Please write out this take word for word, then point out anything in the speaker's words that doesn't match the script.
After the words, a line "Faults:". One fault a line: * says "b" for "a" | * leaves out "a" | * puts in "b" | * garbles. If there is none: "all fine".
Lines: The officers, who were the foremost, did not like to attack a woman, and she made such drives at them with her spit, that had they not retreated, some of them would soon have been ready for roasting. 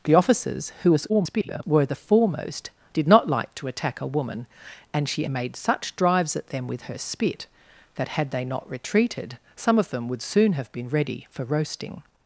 The officers, who [garbled] were the foremost, did not like to attack a woman, and she made such drives at them with her spit, that had they not retreated, some of them would soon have been ready for roasting.
Faults:
* garbles